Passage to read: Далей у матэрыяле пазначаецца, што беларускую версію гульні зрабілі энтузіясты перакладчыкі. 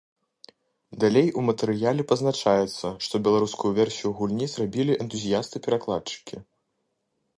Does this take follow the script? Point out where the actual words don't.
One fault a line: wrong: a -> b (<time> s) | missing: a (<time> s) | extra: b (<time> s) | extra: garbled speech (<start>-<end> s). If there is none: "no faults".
no faults